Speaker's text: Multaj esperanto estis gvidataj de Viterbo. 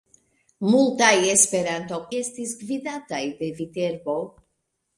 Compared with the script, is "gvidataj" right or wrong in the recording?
right